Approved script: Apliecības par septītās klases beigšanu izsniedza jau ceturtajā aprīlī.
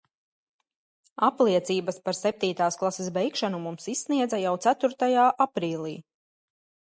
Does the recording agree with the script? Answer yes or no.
no